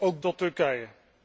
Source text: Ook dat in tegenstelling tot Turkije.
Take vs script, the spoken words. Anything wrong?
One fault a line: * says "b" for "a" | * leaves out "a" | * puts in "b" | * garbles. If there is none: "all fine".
* leaves out "dat in tegenstelling"